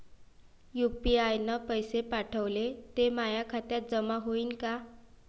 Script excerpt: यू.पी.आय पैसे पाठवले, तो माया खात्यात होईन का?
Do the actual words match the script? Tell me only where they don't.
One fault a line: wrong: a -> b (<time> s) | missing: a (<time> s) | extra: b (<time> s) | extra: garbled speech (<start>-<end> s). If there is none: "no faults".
extra: न (1.4 s)
wrong: तो -> ते (3.0 s)
extra: जमा (3.9 s)